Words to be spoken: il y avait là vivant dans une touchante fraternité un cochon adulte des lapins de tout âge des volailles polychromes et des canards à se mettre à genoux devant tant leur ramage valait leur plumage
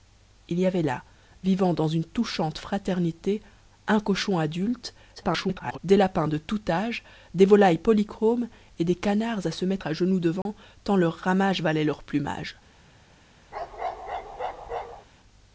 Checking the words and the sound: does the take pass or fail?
fail